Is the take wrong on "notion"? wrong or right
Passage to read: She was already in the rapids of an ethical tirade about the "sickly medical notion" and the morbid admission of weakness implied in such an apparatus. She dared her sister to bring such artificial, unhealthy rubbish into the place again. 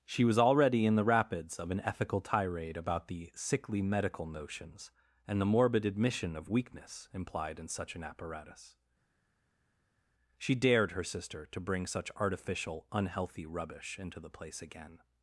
wrong